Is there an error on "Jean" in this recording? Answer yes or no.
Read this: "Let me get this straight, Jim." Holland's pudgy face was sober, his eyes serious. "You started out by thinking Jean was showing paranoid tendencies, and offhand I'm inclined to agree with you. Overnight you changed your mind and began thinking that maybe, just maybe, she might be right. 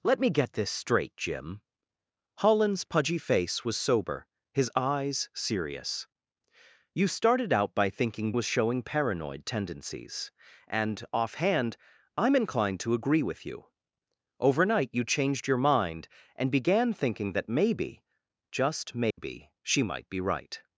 yes